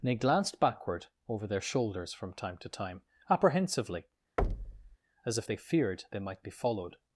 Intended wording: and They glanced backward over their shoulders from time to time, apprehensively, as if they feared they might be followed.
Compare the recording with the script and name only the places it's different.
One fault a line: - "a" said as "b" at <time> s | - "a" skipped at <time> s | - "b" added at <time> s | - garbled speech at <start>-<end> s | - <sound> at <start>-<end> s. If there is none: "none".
- thud at 4.4-5.0 s